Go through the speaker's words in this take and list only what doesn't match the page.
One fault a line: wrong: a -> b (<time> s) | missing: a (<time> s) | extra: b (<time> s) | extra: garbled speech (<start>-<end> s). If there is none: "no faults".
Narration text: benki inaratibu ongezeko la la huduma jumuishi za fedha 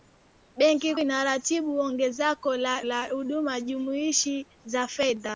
no faults